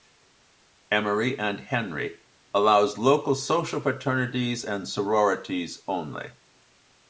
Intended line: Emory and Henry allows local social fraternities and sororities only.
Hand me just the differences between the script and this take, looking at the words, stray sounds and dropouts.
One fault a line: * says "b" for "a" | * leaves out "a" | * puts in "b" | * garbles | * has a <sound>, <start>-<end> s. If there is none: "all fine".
all fine